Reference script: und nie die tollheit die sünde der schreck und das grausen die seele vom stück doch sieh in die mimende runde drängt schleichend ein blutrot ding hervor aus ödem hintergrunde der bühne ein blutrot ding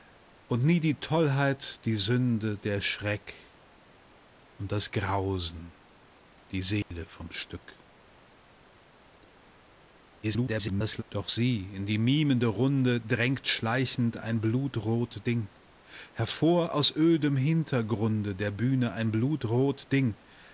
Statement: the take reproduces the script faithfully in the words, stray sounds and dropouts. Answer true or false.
false